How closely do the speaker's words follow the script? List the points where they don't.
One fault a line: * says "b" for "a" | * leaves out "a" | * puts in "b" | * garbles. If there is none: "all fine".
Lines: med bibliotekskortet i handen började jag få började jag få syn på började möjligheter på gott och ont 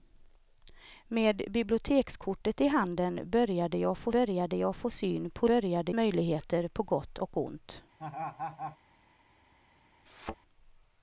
all fine